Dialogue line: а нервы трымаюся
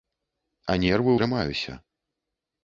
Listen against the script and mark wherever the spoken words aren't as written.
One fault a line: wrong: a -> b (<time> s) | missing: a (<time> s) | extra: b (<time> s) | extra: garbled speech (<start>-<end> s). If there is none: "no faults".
no faults